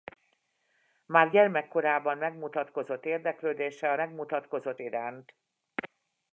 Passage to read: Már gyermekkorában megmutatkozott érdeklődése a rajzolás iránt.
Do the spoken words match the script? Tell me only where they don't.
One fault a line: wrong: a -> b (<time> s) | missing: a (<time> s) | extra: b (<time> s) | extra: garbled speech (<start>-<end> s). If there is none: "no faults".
wrong: rajzolás -> megmutatkozott (3.9 s)